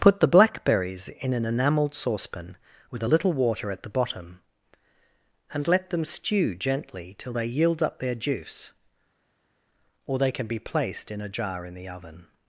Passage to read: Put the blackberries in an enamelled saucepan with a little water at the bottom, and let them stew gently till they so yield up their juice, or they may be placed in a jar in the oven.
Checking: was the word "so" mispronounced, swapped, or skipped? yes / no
yes